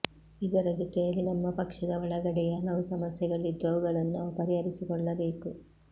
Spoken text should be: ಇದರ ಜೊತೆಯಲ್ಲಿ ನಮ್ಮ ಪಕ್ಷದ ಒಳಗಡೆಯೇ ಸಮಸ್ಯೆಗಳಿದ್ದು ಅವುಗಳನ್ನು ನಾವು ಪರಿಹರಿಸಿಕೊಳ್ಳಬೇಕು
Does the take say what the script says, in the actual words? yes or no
no